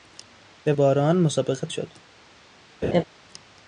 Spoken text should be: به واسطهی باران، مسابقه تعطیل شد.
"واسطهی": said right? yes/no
no